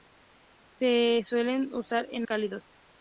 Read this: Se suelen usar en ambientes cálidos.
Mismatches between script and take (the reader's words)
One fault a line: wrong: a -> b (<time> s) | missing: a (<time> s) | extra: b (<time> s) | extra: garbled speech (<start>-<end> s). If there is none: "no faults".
missing: ambientes (2.3 s)